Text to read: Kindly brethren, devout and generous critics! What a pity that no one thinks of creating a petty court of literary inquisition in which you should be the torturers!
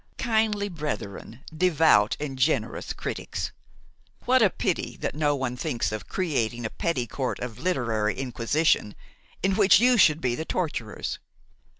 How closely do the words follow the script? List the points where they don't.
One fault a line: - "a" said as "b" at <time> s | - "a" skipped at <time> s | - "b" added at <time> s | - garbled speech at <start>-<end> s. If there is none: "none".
none